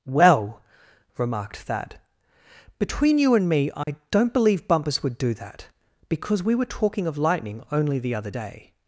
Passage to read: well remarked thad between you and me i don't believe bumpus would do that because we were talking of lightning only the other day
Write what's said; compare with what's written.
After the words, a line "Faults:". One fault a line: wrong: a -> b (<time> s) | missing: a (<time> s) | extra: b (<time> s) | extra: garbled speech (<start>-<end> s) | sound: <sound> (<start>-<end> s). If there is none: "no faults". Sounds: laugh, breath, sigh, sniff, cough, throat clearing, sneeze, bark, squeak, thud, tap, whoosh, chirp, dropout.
well remarked thad between you and me i don't believe bumpus would do that because we were talking of lightning only the other day
Faults:
sound: dropout (3.8-3.9 s)